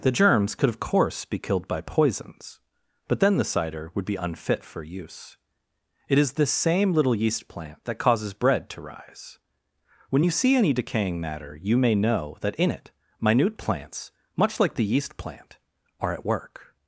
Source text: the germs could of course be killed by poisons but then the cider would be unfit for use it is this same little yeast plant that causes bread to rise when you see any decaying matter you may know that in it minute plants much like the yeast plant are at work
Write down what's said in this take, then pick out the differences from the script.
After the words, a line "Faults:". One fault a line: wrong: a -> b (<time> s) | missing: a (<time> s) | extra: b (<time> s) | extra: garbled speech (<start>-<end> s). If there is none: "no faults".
the germs could of course be killed by poisons but then the cider would be unfit for use it is this same little yeast plant that causes bread to rise when you see any decaying matter you may know that in it minute plants much like the yeast plant are at work
Faults:
no faults